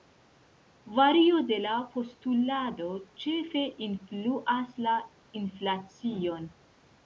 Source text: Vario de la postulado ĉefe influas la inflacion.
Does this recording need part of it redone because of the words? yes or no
no